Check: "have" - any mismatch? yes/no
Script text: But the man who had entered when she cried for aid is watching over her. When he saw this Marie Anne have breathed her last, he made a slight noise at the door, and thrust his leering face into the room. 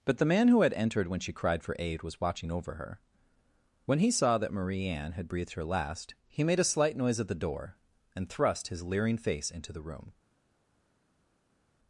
yes